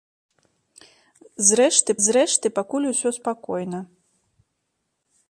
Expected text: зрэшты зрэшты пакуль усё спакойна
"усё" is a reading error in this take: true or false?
false